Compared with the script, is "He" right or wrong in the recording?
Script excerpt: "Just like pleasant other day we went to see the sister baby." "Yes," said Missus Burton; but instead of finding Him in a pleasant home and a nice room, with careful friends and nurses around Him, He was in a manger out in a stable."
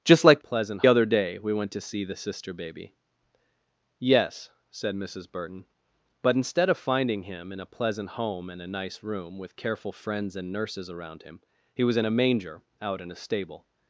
right